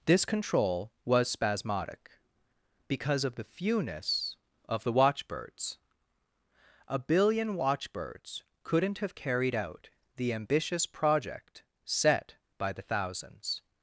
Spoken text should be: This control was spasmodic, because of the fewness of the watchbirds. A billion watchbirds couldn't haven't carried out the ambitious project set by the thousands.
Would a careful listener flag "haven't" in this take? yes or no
yes